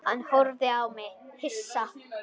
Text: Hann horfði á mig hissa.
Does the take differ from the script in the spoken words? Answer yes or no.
no